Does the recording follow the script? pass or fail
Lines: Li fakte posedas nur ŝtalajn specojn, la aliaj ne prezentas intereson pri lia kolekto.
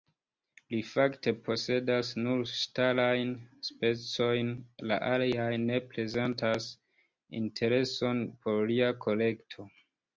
fail